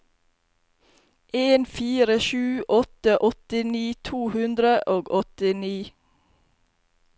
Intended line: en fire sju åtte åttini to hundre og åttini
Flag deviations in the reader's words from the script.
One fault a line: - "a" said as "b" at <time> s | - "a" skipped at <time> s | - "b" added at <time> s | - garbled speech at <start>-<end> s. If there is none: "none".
none